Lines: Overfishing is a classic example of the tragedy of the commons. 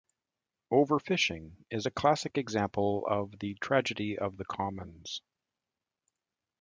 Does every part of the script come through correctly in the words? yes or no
yes